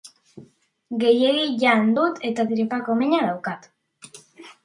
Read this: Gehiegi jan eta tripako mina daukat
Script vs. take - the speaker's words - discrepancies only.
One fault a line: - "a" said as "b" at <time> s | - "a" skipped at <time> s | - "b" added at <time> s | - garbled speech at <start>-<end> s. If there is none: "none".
- "dut" added at 2.0 s